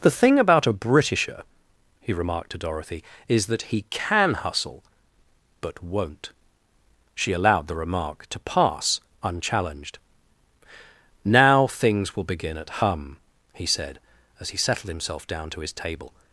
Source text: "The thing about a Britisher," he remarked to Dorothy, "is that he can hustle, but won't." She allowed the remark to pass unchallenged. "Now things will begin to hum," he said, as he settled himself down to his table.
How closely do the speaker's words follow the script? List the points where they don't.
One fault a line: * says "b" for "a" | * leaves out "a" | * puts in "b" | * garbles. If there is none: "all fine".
* says "at" for "to"